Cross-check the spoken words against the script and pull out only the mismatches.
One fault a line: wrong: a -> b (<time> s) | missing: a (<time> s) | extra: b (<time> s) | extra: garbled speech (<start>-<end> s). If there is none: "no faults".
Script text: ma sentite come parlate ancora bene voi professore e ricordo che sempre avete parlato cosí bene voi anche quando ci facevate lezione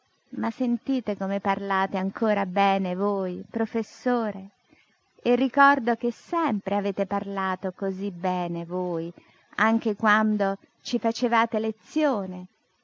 no faults